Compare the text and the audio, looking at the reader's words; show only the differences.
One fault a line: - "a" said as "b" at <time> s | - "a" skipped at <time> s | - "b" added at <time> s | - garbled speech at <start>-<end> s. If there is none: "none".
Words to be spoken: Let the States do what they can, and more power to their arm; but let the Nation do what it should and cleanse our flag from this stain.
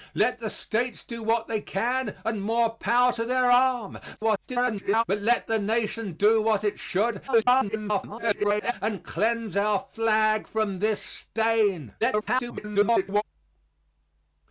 - garbled speech at 4.2-5.0 s
- garbled speech at 7.3-8.7 s
- garbled speech at 12.0-13.2 s